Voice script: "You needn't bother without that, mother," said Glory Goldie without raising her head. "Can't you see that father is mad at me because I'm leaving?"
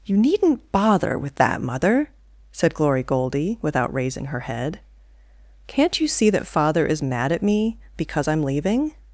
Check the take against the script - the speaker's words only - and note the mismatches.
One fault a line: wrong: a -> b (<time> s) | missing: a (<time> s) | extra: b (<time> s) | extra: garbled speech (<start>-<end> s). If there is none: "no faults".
wrong: without -> with (1.2 s)